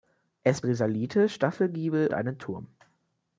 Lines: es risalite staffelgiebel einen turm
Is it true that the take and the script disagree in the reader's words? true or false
false